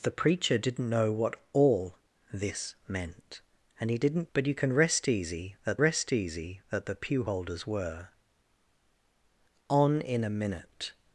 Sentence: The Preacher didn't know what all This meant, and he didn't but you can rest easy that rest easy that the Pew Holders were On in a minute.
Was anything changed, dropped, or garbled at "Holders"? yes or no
no